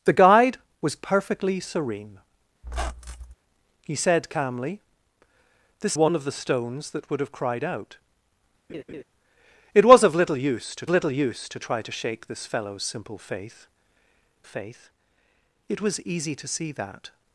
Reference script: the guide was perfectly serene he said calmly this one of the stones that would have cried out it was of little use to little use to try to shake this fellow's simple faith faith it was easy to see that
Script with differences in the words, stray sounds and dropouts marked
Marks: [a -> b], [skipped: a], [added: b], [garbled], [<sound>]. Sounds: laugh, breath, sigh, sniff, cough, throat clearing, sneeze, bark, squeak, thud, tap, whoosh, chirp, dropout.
the guide was perfectly serene [squeak] he said calmly this one of the stones that would have cried out [laugh] it was of little use to little use to try to shake this fellow's simple faith faith it was easy to see that